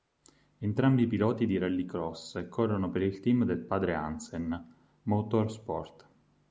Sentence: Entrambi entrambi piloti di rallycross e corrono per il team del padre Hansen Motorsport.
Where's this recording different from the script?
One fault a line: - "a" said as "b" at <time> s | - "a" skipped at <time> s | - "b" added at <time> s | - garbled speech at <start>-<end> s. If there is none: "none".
- "entrambi" skipped at 1.1 s